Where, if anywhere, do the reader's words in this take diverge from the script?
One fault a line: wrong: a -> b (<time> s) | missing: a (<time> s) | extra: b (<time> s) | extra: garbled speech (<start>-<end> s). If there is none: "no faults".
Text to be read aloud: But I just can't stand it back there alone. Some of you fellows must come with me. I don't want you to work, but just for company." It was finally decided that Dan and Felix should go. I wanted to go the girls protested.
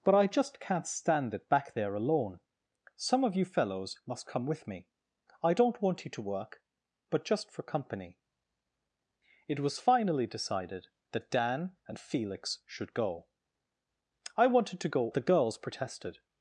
no faults